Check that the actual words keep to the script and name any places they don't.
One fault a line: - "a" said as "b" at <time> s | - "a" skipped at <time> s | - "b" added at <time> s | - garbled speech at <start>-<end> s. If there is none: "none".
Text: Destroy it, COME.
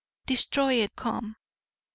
none